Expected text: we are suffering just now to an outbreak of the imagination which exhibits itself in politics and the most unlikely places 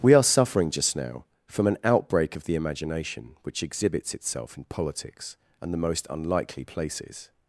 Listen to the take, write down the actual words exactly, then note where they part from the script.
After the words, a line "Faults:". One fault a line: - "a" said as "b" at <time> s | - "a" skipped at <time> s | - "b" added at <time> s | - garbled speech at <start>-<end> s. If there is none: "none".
we are suffering just now from an outbreak of the imagination which exhibits itself in politics and the most unlikely places
Faults:
- "to" said as "from" at 1.4 s